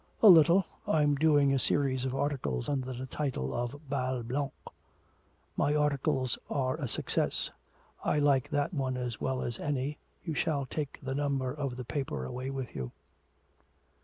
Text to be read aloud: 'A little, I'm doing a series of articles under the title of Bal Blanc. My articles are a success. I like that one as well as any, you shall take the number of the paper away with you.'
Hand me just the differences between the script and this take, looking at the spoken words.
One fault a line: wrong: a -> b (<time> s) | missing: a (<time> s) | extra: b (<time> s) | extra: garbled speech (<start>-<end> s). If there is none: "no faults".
no faults